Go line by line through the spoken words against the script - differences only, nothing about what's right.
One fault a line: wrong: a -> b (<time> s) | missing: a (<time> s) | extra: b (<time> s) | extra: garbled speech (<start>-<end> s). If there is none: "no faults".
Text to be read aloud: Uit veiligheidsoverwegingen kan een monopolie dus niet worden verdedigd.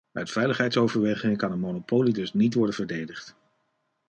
no faults